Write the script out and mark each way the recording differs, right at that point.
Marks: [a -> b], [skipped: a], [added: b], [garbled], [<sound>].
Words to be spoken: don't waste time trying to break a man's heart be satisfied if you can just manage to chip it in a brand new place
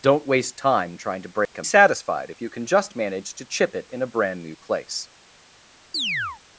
don't waste time trying to break [dropout] a [skipped: man's heart be] satisfied if you can just manage to chip it in a brand new place [chirp]